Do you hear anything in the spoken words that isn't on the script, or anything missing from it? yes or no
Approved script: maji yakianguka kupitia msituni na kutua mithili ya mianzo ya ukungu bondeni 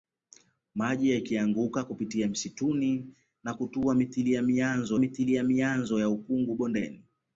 yes